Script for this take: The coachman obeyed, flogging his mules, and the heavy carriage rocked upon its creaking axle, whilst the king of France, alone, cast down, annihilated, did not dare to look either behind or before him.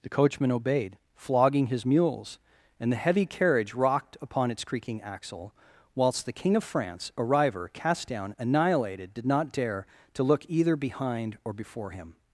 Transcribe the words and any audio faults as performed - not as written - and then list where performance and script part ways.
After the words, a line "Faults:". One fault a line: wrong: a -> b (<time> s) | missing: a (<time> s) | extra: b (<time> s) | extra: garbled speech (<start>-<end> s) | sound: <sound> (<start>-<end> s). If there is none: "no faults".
The coachman obeyed, flogging his mules, and the heavy carriage rocked upon its creaking axle, whilst the king of France, a river, cast down, annihilated, did not dare to look either behind or before him.
Faults:
wrong: alone -> a river (7.2 s)